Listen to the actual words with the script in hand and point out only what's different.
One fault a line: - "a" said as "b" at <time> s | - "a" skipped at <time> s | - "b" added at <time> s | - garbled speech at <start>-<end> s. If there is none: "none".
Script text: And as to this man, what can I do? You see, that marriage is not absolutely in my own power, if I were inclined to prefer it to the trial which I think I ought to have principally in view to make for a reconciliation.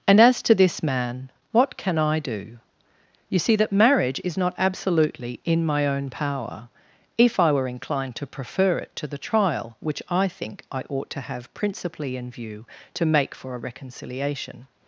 none